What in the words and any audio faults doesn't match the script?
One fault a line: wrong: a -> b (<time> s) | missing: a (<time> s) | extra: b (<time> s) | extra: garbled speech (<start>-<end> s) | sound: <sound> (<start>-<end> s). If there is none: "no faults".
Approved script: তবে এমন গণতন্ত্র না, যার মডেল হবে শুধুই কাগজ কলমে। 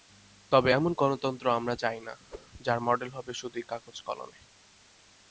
extra: আমরা চাই (1.5 s)
sound: whoosh (2.3-2.5 s)